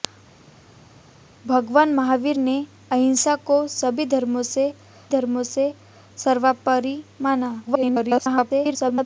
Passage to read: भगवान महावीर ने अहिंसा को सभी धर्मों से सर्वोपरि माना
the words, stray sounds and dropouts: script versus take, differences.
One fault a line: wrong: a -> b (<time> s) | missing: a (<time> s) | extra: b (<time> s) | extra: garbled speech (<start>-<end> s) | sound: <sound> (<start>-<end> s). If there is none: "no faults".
extra: धर्मों से (5.1 s)
extra: garbled speech (7.7-9.1 s)